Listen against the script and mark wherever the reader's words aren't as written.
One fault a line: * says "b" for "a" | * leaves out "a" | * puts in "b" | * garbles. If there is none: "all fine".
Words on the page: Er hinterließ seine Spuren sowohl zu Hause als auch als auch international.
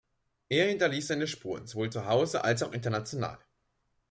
* leaves out "als auch"